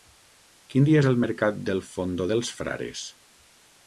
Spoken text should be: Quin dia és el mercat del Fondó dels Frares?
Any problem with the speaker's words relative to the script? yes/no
no